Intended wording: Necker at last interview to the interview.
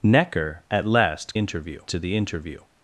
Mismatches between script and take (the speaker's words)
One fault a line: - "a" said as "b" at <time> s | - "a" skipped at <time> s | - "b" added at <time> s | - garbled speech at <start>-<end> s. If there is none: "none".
none